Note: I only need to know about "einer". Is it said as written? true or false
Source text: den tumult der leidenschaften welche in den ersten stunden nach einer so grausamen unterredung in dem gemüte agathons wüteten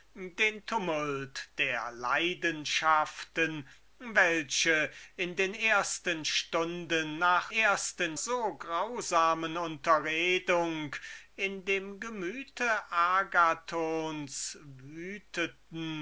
false